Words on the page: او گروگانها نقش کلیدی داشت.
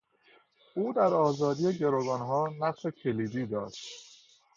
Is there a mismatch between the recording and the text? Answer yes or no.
yes